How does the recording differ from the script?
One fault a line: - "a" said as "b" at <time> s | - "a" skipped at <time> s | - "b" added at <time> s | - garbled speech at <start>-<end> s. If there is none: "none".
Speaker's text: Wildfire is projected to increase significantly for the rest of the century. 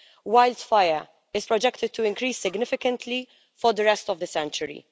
none